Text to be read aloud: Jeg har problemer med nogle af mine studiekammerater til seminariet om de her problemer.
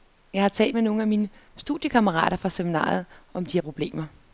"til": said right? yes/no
no